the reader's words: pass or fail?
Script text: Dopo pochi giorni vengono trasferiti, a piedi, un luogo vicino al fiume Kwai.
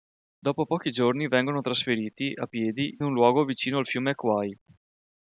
pass